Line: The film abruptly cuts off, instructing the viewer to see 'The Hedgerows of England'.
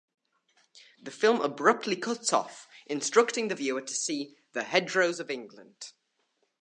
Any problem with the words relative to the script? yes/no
no